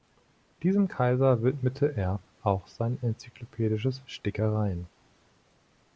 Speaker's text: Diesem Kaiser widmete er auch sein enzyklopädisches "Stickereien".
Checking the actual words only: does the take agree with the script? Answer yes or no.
yes